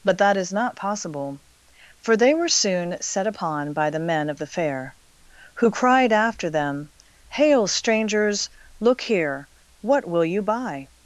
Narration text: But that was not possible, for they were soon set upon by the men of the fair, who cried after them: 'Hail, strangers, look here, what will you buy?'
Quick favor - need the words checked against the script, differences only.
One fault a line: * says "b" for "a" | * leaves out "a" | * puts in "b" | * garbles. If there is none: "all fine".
* says "is" for "was"